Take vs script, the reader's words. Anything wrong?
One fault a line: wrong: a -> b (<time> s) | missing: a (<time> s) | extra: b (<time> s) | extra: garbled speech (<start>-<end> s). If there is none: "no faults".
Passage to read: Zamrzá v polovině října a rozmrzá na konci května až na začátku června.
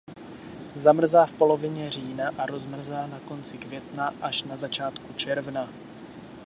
no faults